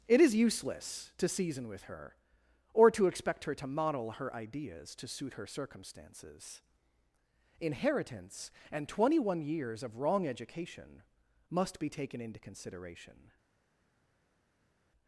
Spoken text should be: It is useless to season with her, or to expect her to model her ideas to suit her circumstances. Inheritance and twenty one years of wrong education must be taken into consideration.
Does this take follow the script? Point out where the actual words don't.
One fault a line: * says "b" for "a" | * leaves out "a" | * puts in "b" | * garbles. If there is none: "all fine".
all fine